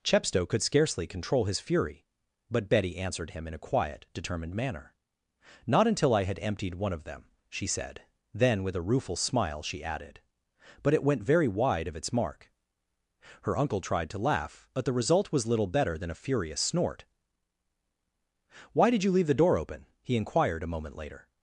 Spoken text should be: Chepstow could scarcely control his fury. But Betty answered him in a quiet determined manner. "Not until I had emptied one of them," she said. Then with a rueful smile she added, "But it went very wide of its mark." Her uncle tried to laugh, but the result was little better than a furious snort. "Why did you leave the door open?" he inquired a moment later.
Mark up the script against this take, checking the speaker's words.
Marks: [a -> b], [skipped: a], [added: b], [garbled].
Chepstow could scarcely control his fury. But Betty answered him in a quiet determined manner. "Not until I had emptied one of them," she said. Then with a rueful smile she added, "But it went very wide of its mark." Her uncle tried to laugh, but the result was little better than a furious snort. "Why did you leave the door open?" he inquired a moment later.